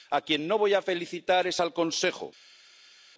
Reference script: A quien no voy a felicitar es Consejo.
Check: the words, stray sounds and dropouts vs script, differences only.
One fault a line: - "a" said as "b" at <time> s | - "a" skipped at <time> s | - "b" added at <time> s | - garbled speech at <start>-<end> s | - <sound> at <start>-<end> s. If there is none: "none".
- "al" added at 1.6 s